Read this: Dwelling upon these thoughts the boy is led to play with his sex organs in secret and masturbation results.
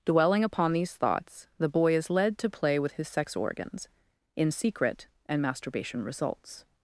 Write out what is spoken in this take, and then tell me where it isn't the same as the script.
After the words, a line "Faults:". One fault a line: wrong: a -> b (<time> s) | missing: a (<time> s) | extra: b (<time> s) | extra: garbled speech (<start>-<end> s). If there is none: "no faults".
Dwelling upon these thoughts the boy is led to play with his sex organs in secret and masturbation results.
Faults:
no faults